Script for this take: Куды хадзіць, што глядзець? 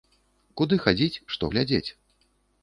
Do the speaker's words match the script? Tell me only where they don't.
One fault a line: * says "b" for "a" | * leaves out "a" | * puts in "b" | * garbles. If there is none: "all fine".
all fine